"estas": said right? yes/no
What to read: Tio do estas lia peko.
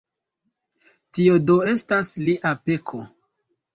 yes